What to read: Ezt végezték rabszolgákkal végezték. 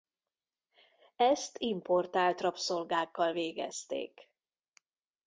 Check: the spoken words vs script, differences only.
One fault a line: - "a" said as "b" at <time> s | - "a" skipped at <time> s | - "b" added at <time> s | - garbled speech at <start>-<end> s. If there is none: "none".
- "végezték" said as "importált" at 1.6 s